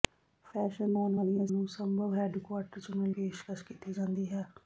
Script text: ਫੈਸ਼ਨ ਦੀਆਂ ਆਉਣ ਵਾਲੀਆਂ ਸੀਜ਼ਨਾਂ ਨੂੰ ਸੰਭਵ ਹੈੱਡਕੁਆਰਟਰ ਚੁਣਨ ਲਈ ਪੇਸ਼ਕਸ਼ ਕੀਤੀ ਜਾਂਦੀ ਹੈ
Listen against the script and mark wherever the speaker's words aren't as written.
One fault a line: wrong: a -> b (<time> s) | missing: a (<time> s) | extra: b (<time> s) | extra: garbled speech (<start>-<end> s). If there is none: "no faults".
missing: ਦੀਆਂ (0.9 s)
missing: ਸੀਜ਼ਨਾਂ (1.5 s)
missing: ਲਈ (3.1 s)